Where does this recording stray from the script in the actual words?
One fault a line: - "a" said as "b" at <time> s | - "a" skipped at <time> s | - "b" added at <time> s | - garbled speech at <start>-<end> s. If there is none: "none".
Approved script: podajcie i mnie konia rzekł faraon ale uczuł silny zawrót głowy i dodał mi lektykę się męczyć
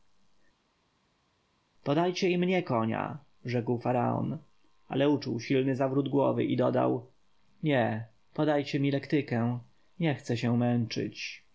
- "nie podajcie" added at 7.6 s
- "nie chcę" added at 10.0 s